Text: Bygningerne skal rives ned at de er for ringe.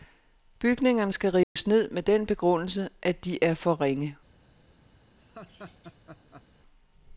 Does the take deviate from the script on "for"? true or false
false